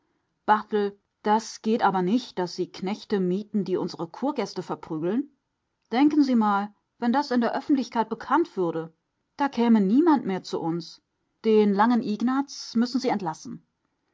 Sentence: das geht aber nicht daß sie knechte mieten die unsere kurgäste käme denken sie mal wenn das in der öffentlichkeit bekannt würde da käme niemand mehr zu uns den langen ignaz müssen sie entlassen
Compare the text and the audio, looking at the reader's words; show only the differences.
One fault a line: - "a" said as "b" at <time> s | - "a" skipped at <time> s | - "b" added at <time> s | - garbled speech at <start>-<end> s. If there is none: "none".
- "käme" said as "verprügeln" at 4.6 s